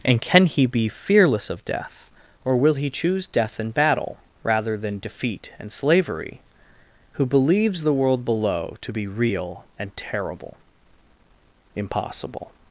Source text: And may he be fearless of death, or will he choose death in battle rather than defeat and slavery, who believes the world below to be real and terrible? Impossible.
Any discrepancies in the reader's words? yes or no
yes